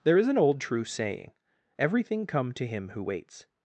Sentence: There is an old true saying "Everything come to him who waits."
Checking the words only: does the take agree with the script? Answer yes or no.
yes